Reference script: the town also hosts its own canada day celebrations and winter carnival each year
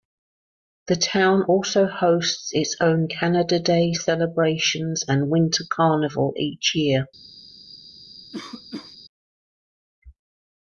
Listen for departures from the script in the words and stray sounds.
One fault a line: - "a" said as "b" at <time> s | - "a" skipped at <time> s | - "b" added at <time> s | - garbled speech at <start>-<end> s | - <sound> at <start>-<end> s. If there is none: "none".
- cough at 8.3-9.0 s